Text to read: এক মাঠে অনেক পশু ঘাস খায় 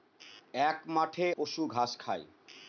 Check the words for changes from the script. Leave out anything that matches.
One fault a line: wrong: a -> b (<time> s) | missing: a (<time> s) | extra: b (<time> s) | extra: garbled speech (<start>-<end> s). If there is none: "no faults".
missing: অনেক (1.3 s)